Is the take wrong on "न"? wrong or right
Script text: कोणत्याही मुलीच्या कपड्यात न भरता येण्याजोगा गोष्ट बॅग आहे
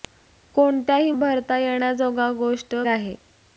wrong